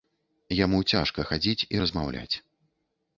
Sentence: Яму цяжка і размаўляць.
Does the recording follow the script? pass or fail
fail